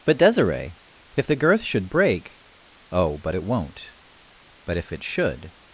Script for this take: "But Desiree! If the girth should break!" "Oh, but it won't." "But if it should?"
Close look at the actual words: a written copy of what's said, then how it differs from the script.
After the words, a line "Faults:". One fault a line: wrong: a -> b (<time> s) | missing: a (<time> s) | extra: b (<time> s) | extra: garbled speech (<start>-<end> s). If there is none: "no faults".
"But Desiree! If the girth should break!" "Oh, but it won't." "But if it should?"
Faults:
no faults